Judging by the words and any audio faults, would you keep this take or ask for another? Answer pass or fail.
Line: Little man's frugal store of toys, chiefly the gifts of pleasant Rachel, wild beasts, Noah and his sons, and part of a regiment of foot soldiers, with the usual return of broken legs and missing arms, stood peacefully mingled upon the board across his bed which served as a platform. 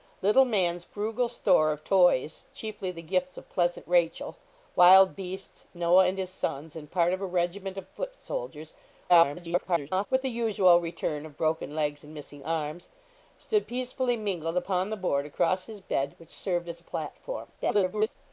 fail